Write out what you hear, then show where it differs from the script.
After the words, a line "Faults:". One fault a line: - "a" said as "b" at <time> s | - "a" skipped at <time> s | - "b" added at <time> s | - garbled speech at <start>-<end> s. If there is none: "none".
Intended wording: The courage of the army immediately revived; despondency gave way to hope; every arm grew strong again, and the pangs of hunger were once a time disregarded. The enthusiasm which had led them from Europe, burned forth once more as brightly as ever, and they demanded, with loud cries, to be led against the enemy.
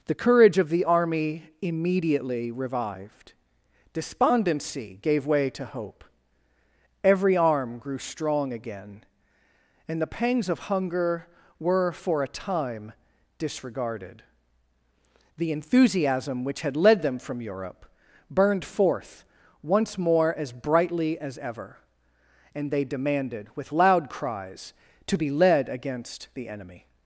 The courage of the army immediately revived; despondency gave way to hope; every arm grew strong again, and the pangs of hunger were for a time disregarded. The enthusiasm which had led them from Europe, burned forth once more as brightly as ever, and they demanded, with loud cries, to be led against the enemy.
Faults:
- "once" said as "for" at 11.9 s